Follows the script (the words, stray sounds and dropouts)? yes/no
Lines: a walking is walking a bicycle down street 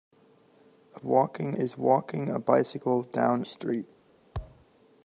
no